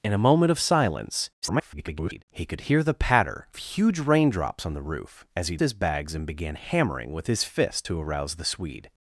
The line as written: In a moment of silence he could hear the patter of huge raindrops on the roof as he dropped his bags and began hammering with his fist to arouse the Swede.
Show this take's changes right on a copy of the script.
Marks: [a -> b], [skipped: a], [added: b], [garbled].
In a moment of silence [garbled] he could hear the patter [skipped: of] huge raindrops on the roof as he [skipped: dropped] his bags and began hammering with his fist to arouse the Swede.